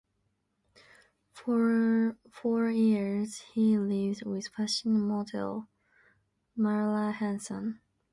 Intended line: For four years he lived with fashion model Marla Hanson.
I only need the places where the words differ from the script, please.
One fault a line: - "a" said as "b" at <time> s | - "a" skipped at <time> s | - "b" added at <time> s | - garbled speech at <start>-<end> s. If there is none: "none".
none